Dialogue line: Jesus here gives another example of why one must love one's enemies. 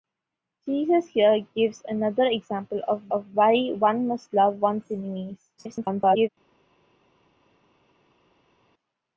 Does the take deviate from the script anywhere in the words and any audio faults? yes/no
yes